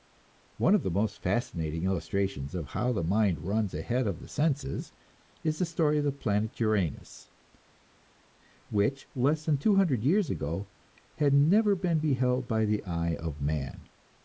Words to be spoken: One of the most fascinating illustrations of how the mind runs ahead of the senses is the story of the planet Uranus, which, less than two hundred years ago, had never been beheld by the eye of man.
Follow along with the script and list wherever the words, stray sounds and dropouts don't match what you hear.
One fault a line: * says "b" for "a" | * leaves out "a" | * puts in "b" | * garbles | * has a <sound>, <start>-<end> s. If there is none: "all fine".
all fine